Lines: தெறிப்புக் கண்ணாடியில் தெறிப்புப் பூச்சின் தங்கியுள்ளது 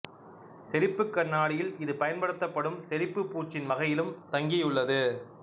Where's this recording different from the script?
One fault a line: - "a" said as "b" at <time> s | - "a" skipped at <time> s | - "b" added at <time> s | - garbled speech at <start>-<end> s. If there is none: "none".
- "இது பயன்படுத்தப்படும்" added at 1.8 s
- "வகையிலும்" added at 3.7 s